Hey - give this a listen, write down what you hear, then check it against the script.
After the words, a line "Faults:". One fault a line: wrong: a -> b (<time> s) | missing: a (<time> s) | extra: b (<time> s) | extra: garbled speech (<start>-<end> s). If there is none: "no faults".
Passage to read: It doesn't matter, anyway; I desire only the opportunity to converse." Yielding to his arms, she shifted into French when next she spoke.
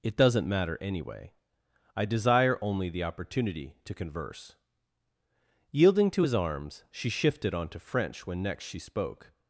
It doesn't matter, anyway; I desire only the opportunity to converse." Yielding to his arms, she shifted onto French when next she spoke.
Faults:
wrong: into -> onto (7.5 s)